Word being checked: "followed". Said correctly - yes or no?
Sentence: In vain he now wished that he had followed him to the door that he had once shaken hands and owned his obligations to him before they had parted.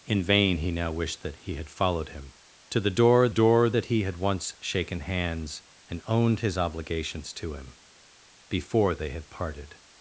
yes